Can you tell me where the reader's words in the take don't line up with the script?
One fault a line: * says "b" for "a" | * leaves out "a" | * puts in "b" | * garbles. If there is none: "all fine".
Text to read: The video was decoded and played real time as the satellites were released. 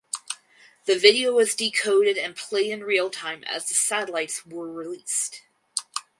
* puts in "in"